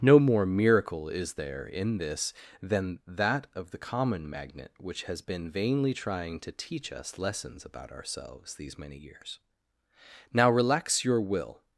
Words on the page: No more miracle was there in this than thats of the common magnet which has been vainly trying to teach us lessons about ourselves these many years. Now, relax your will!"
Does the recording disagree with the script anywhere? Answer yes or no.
yes